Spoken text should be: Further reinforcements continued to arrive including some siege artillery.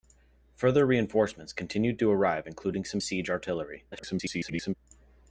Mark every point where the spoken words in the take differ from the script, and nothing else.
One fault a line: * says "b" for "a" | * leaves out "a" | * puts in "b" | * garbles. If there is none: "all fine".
* garbles